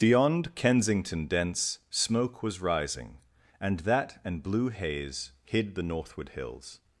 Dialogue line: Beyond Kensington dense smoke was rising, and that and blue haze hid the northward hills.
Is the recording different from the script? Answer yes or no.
no